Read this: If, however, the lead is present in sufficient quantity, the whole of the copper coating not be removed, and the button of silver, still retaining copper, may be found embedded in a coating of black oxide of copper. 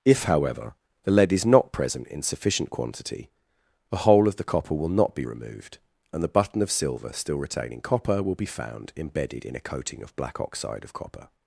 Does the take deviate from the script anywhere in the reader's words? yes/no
yes